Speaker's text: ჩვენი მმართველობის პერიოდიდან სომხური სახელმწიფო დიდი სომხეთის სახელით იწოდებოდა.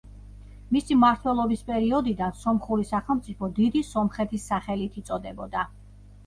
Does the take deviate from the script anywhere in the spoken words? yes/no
yes